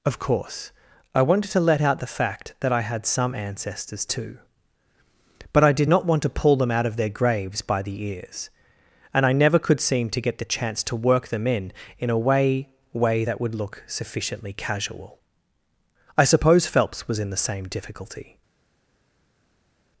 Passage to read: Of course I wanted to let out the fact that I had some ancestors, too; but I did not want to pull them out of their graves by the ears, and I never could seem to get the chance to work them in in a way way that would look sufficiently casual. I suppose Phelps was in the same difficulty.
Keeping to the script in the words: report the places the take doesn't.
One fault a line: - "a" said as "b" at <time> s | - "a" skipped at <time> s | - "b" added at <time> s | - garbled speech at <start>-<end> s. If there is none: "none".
none